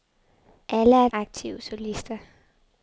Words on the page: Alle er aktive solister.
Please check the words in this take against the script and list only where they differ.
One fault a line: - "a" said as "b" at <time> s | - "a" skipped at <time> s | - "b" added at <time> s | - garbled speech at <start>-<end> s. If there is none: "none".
none